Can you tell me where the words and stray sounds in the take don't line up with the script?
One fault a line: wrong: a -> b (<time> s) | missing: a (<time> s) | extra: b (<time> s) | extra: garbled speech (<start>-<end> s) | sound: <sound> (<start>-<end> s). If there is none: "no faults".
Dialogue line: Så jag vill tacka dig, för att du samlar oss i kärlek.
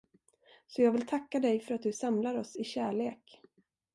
no faults